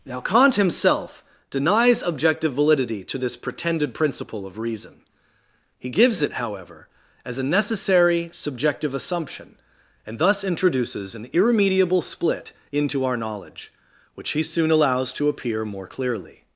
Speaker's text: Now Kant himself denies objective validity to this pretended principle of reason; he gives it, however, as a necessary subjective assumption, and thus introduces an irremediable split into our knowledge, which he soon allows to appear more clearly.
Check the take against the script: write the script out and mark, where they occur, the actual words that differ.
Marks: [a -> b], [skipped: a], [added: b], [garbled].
Now Kant himself denies objective validity to this pretended principle of reason; he gives it, however, as a necessary subjective assumption, and thus introduces an irremediable split into our knowledge, which he soon allows to appear more clearly.